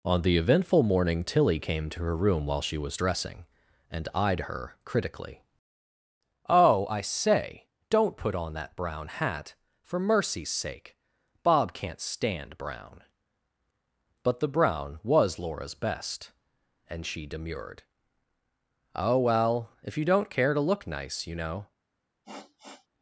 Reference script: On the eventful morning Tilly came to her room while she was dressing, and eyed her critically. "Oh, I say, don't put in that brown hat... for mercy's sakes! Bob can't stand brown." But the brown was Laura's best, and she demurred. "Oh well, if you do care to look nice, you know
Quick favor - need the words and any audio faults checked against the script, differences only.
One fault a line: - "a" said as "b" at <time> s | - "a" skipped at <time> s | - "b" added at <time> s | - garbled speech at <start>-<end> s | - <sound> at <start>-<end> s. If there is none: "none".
- "in" said as "on" at 8.3 s
- "sakes" said as "sake" at 10.5 s
- "do" said as "don't" at 20.0 s
- sniff at 22.2-22.9 s